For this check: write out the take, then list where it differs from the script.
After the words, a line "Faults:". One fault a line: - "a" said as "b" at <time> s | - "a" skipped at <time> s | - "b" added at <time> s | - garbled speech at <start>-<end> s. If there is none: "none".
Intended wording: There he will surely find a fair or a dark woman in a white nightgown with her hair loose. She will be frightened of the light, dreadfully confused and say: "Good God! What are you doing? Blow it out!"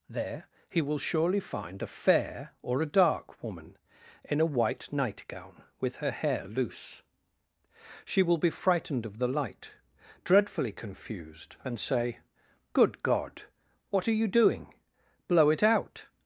There he will surely find a fair or a dark woman in a white nightgown with her hair loose. She will be frightened of the light, dreadfully confused and say: "Good God! What are you doing? Blow it out!"
Faults:
none